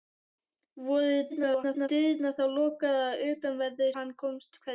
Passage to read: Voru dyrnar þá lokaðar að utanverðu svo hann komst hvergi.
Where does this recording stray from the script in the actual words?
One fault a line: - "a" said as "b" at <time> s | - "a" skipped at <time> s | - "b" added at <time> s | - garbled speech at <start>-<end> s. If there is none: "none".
- garbled speech at 1.3-1.9 s
- "svo" skipped at 3.9 s